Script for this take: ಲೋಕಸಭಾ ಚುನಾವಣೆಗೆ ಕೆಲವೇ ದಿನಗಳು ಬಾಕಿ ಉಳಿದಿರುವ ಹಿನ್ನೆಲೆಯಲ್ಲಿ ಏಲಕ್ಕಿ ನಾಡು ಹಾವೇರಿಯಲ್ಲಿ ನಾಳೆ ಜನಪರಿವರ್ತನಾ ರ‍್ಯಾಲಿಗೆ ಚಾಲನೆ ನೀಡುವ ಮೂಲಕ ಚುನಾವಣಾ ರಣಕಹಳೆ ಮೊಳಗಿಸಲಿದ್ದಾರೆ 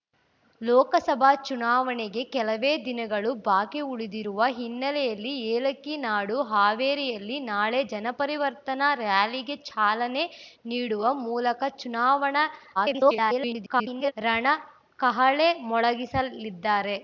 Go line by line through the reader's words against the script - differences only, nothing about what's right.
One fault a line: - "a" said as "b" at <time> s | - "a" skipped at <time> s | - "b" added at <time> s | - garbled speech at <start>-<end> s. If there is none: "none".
- garbled speech at 12.7-14.1 s